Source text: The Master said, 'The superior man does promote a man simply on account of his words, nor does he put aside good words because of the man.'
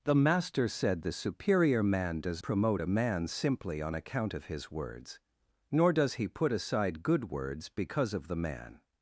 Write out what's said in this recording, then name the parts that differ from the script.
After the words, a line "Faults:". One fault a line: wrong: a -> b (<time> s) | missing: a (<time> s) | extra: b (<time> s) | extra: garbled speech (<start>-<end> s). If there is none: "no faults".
The Master said, 'The superior man does promote a man simply on account of his words, nor does he put aside good words because of the man.'
Faults:
no faults